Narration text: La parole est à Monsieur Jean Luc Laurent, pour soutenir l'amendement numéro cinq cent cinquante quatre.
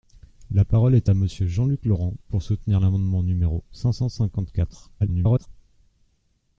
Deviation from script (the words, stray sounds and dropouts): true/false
true